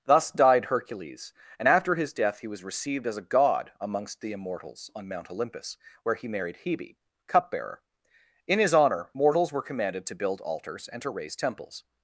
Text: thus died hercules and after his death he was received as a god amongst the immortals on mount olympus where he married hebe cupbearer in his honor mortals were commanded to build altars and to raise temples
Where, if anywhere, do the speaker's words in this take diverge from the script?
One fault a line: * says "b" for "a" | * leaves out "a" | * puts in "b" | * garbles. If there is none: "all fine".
all fine